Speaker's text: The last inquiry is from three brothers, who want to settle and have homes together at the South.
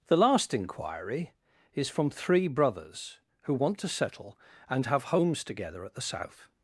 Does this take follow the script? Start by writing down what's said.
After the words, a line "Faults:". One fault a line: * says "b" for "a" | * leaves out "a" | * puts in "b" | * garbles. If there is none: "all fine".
The last inquiry is from three brothers, who want to settle and have homes together at the South.
Faults:
all fine